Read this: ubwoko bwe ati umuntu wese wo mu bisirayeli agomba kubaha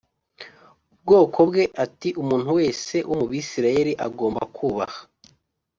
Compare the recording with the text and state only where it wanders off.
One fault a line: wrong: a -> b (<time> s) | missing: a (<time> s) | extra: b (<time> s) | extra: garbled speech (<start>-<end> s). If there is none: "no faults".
no faults